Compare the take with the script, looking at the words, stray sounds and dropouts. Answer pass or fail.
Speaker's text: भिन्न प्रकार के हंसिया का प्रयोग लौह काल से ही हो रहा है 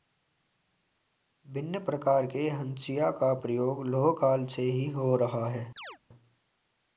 fail